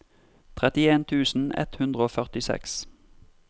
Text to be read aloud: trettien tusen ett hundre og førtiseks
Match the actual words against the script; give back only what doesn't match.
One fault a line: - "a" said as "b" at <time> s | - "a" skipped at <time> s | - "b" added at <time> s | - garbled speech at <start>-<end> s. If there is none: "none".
none